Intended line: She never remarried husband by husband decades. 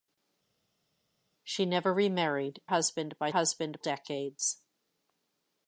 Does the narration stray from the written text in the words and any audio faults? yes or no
no